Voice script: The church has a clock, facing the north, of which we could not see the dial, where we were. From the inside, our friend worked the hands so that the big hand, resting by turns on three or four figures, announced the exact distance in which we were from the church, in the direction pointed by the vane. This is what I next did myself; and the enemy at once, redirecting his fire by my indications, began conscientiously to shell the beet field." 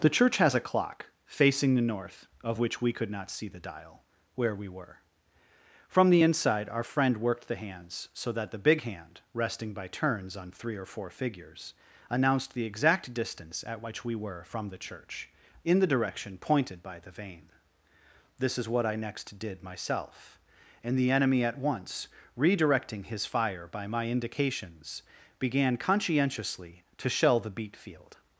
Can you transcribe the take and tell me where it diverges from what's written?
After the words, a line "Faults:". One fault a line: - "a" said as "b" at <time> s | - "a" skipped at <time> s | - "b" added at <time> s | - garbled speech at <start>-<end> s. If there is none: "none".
The church has a clock, facing the north, of which we could not see the dial, where we were. From the inside, our friend worked the hands so that the big hand, resting by turns on three or four figures, announced the exact distance at which we were from the church, in the direction pointed by the vane. This is what I next did myself; and the enemy at once, redirecting his fire by my indications, began conscientiously to shell the beet field."
Faults:
- "in" said as "at" at 13.7 s